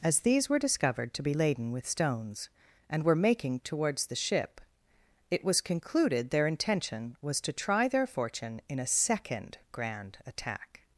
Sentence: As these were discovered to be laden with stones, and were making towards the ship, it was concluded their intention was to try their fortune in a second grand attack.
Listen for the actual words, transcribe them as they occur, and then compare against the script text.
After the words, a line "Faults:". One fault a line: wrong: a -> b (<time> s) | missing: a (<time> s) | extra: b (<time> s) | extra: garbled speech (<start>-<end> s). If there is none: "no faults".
As these were discovered to be laden with stones, and were making towards the ship, it was concluded their intention was to try their fortune in a second grand attack.
Faults:
no faults